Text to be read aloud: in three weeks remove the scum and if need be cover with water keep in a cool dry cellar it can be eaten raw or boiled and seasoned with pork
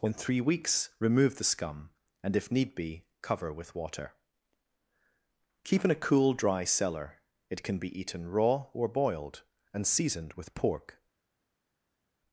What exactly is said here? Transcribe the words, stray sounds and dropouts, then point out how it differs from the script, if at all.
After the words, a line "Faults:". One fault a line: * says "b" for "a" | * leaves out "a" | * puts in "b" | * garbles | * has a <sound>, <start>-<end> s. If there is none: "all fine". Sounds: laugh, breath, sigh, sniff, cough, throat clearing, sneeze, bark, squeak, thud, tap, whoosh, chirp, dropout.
in three weeks remove the scum and if need be cover with water keep in a cool dry cellar it can be eaten raw or boiled and seasoned with pork
Faults:
all fine